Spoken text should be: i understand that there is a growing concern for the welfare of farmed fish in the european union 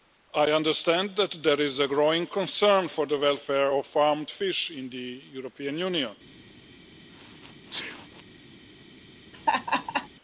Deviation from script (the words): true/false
false